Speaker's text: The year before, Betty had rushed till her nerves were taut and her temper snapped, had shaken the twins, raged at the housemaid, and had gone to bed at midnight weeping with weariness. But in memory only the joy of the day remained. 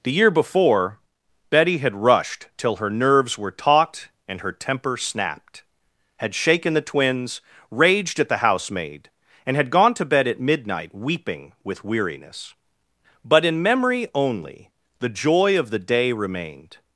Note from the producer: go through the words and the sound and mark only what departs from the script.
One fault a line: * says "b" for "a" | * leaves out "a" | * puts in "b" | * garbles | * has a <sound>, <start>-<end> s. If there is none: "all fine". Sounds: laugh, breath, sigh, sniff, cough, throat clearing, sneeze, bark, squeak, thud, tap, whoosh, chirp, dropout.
all fine